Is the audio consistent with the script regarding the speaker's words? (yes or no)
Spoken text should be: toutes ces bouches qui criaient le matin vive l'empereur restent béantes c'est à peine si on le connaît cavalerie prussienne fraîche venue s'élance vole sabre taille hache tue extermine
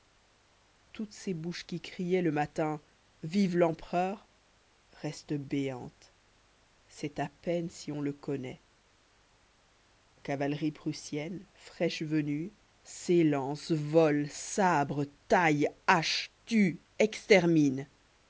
yes